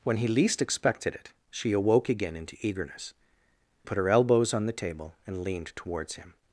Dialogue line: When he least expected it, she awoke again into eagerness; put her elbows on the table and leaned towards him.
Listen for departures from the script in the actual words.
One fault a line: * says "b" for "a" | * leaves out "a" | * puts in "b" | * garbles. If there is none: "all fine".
all fine